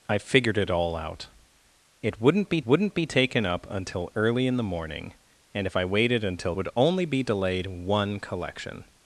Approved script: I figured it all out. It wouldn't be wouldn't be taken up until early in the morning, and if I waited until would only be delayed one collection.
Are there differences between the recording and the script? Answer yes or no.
no